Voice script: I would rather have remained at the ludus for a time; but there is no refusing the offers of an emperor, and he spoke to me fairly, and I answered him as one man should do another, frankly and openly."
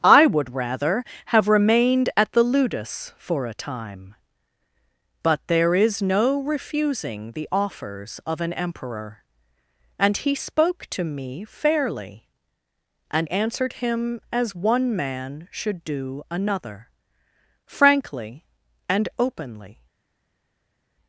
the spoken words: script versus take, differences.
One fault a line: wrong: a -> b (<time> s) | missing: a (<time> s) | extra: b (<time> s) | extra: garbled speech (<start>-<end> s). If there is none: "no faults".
missing: I (13.3 s)